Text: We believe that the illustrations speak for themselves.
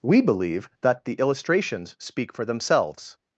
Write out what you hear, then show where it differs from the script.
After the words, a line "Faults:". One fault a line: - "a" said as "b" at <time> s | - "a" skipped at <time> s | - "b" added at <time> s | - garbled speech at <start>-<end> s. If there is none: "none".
We believe that the illustrations speak for themselves.
Faults:
none